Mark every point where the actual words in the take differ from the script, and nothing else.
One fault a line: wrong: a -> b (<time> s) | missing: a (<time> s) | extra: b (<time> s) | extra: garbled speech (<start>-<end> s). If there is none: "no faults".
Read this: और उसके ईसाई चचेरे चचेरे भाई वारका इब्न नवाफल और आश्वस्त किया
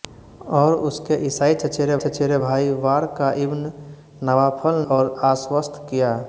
no faults